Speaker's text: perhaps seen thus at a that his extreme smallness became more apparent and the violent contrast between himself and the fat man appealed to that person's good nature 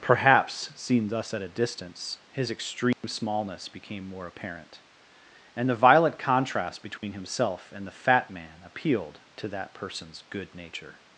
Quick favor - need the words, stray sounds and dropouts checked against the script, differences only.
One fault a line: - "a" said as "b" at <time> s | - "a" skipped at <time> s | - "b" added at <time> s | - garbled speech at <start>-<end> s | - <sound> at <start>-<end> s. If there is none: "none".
- "that" said as "distance" at 1.5 s
- dropout at 2.9-3.0 s
- dropout at 7.0-7.0 s